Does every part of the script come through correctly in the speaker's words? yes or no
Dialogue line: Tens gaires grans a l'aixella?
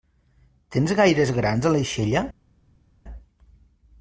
yes